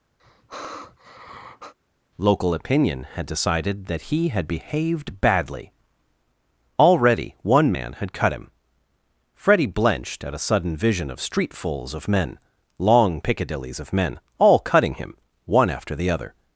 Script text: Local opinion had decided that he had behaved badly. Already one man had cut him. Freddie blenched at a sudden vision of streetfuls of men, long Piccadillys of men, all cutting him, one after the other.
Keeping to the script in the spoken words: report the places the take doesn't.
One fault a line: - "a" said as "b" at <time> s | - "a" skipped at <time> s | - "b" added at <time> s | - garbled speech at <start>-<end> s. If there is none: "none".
none